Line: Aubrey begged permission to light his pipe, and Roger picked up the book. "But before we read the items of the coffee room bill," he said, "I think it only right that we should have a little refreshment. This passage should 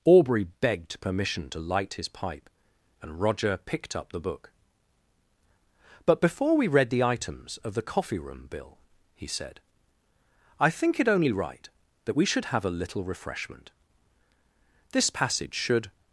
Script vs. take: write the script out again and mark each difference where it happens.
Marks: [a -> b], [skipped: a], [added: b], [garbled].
Aubrey begged permission to light his pipe, and Roger picked up the book. "But before we read the items of the coffee room bill," he said, "I think it only right that we should have a little refreshment. This passage should